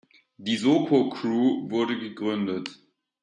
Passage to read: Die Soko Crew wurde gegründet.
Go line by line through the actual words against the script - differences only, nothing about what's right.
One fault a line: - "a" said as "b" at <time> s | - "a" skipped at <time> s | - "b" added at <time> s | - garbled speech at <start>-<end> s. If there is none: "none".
none